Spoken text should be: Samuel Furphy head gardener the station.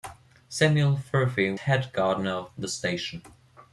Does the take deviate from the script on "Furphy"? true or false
false